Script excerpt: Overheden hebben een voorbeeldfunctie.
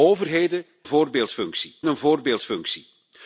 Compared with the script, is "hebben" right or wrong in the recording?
wrong